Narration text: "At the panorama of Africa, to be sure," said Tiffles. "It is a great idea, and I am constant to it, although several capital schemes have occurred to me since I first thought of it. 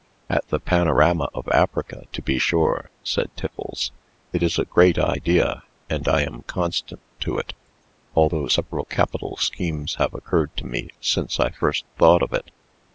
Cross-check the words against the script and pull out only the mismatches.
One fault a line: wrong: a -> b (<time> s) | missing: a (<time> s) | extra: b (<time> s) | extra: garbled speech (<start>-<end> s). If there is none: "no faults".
no faults